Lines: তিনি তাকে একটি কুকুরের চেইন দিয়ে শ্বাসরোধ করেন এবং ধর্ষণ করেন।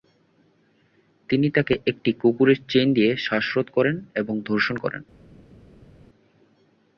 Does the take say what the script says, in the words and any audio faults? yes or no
yes